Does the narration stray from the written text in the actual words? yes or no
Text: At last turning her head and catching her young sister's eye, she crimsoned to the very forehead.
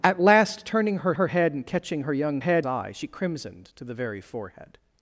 yes